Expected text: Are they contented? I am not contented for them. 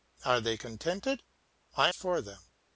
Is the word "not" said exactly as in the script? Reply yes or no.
no